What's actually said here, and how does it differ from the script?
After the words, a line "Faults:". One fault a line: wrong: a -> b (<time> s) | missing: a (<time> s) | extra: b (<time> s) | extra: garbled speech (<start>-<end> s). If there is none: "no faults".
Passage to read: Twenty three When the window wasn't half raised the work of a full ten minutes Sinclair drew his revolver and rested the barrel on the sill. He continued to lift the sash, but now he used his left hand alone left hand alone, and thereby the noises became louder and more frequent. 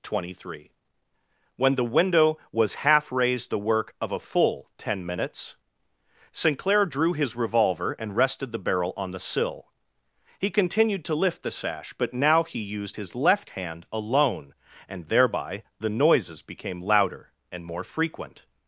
Twenty three When the window was half raised the work of a full ten minutes Sinclair drew his revolver and rested the barrel on the sill. He continued to lift the sash, but now he used his left hand alone, and thereby the noises became louder and more frequent.
Faults:
wrong: wasn't -> was (2.5 s)
missing: left hand alone (14.5 s)